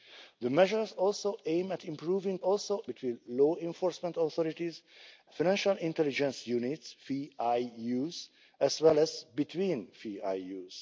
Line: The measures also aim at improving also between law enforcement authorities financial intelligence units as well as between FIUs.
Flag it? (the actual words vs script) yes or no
no